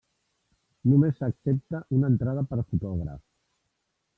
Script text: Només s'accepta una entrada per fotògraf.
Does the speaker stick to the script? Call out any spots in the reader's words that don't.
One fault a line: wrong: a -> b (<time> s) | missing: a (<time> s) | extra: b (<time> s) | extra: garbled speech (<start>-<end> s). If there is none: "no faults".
no faults